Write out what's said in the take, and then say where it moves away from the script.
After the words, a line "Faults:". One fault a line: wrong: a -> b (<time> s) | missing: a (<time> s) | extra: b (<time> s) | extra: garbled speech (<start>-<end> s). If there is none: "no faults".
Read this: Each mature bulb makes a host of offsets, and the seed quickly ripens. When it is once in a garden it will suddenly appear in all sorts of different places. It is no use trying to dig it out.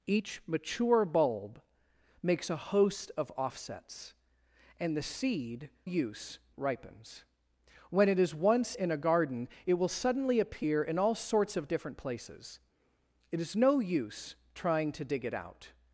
Each mature bulb makes a host of offsets, and the seed use ripens. When it is once in a garden it will suddenly appear in all sorts of different places. It is no use trying to dig it out.
Faults:
wrong: quickly -> use (5.8 s)